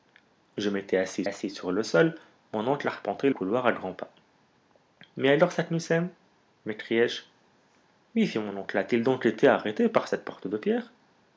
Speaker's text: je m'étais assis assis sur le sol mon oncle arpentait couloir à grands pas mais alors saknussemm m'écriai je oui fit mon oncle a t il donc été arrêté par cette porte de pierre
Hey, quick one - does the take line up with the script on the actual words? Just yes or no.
yes